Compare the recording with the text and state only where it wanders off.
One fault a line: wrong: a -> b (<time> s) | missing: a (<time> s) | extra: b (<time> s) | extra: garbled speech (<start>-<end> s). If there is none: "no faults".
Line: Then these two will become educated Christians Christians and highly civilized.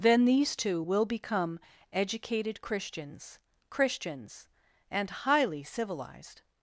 no faults